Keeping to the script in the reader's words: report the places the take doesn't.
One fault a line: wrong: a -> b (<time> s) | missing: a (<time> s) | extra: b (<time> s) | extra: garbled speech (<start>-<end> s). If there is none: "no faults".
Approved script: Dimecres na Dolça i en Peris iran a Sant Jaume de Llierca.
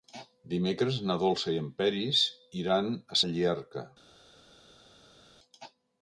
missing: Sant Jaume (3.2 s)